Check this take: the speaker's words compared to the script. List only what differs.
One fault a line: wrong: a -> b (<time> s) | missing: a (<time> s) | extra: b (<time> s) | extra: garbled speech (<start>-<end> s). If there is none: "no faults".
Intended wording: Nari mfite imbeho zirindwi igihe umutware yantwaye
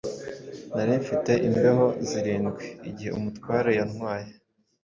no faults